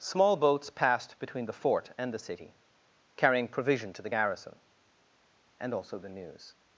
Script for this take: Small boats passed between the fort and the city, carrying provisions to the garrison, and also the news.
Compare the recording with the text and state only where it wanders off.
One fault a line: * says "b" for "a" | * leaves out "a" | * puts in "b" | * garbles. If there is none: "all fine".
* says "provision" for "provisions"